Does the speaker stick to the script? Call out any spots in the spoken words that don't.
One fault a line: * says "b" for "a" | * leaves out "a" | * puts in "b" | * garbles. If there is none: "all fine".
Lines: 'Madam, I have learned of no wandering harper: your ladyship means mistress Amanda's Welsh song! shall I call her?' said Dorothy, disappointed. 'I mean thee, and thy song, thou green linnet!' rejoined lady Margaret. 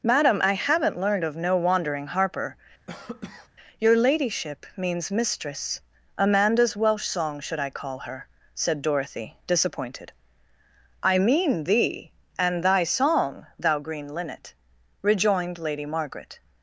* says "haven't" for "have"
* says "should" for "shall"